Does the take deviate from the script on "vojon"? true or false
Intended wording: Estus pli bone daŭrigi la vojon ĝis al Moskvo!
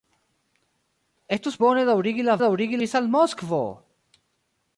true